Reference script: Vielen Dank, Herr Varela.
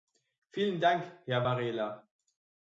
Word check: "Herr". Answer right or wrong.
right